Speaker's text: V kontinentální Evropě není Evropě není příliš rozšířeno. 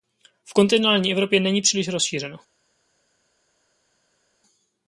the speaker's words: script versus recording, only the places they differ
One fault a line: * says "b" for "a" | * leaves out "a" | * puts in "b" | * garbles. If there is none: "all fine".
* leaves out "Evropě není"